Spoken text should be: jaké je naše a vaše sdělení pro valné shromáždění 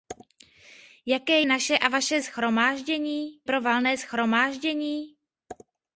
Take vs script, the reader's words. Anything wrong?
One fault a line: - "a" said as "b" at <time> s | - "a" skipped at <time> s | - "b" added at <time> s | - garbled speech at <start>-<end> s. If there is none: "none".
- "je" skipped at 1.4 s
- "sdělení" said as "shromáždění" at 2.2 s